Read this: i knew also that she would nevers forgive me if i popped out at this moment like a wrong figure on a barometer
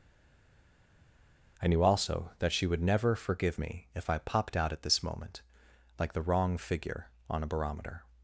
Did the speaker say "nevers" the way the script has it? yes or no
no